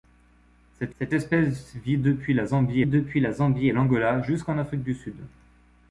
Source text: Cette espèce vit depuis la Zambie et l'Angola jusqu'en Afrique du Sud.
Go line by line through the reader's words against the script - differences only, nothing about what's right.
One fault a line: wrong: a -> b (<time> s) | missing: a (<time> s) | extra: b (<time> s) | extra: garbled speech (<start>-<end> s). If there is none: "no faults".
extra: cette (1.0 s)
extra: depuis la Zambie (2.9 s)